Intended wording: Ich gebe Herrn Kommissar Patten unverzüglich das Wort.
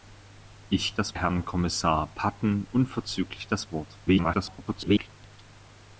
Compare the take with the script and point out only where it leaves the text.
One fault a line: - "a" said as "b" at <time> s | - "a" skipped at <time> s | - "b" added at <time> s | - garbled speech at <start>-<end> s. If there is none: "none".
- "gebe" said as "das" at 0.9 s
- garbled speech at 4.1-5.1 s